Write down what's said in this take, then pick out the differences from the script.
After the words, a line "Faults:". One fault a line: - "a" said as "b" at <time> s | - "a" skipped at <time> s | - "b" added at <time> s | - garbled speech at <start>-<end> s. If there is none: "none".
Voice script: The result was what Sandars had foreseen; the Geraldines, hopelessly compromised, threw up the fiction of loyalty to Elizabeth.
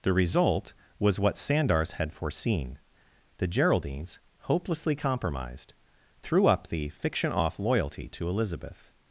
The result was what Sandars had foreseen; the Geraldines, hopelessly compromised, threw up the fiction off loyalty to Elizabeth.
Faults:
- "of" said as "off" at 7.3 s